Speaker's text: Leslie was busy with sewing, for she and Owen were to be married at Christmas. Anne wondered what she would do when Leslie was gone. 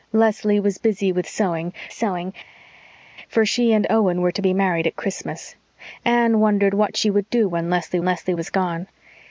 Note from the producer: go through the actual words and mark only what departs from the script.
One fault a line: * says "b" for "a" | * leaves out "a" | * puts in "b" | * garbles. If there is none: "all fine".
* puts in "sewing"
* puts in "Leslie"